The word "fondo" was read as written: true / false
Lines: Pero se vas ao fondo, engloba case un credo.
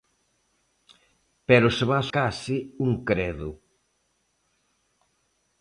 false